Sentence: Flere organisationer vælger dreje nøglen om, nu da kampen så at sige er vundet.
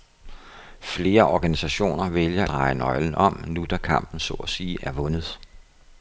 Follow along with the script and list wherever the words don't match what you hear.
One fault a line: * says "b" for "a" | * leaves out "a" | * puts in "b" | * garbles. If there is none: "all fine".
all fine